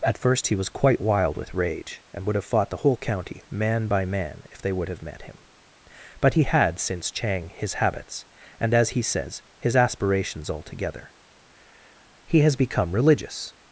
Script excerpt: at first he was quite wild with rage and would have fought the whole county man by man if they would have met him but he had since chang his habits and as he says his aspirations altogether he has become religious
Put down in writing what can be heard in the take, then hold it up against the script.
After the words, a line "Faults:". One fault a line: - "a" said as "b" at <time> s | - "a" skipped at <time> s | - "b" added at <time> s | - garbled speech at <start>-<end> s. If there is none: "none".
at first he was quite wild with rage and would have fought the whole county man by man if they would have met him but he had since chang his habits and as he says his aspirations altogether he has become religious
Faults:
none